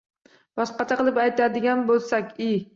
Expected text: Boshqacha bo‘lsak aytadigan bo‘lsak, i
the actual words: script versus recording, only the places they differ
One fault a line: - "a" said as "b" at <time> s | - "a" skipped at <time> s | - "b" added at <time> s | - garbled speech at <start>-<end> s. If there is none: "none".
- "bo‘lsak" said as "qilib" at 1.0 s